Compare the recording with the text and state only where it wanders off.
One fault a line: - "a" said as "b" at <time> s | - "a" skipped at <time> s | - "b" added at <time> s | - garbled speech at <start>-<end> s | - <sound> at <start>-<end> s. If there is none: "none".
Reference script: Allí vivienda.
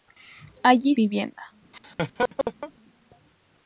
- laugh at 1.7-2.7 s